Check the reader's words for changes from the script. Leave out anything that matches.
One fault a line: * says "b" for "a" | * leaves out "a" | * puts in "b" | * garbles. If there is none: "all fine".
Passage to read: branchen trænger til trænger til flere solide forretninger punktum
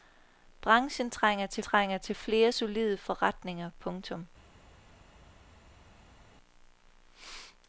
all fine